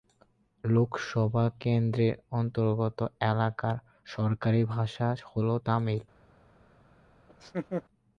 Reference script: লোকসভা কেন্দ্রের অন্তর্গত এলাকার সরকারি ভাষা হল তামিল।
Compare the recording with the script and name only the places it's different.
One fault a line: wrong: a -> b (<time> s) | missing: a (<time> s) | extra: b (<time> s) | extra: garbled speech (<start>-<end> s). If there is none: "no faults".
no faults